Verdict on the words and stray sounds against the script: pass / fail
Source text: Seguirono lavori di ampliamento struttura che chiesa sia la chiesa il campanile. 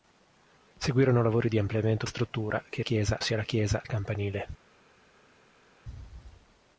pass